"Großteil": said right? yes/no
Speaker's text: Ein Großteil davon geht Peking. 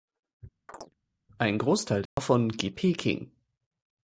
yes